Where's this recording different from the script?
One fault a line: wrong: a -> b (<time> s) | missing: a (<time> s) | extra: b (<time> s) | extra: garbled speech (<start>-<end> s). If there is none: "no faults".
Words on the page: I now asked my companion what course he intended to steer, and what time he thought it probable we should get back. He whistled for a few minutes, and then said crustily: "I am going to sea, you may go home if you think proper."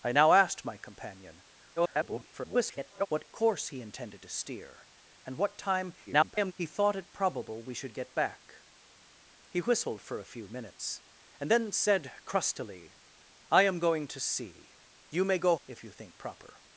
extra: garbled speech (1.8-3.1 s)
extra: garbled speech (6.1-6.5 s)
missing: home (15.6 s)